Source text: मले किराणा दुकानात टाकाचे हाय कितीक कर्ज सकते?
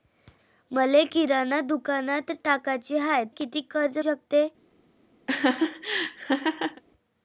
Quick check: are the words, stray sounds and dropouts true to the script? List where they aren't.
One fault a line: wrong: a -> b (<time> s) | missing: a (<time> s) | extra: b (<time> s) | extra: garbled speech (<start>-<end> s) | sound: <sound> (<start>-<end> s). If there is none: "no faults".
sound: laugh (5.3-6.8 s)